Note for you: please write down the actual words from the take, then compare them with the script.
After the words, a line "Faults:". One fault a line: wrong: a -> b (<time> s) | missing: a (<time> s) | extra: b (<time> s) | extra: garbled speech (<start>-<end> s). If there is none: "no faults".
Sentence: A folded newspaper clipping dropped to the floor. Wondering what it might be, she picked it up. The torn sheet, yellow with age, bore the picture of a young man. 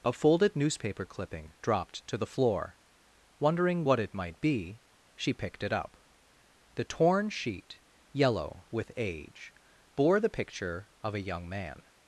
A folded newspaper clipping dropped to the floor. Wondering what it might be, she picked it up. The torn sheet, yellow with age, bore the picture of a young man.
Faults:
no faults